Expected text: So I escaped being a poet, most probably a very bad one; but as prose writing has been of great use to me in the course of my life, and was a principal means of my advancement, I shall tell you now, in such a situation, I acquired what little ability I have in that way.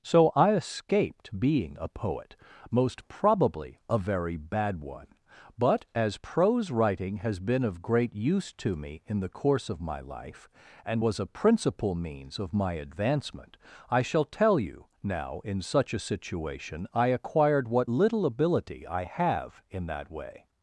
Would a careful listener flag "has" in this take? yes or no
no